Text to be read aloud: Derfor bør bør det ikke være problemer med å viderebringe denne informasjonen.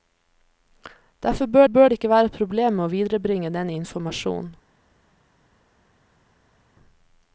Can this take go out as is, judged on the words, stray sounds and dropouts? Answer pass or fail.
pass